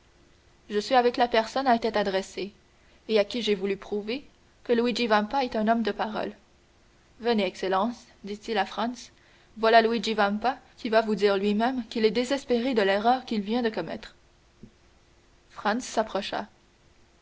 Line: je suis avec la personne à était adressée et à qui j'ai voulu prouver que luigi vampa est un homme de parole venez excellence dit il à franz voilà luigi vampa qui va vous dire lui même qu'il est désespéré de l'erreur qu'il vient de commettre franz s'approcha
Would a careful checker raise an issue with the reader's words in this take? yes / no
no